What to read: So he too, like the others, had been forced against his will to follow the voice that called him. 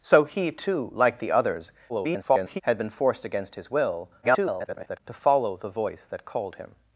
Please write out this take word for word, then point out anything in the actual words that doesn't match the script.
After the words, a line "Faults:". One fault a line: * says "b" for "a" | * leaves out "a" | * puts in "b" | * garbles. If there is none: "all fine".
So he too, like the others, [garbled] had been forced against his will [garbled] to follow the voice that called him.
Faults:
* garbles
* garbles